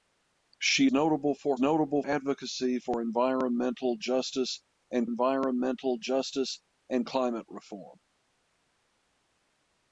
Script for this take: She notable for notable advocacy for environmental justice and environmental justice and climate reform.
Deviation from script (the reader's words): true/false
false